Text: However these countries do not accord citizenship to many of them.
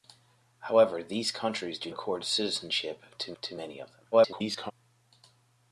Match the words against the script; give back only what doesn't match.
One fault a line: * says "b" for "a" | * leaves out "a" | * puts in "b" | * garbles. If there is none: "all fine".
* leaves out "not"
* puts in "to"
* garbles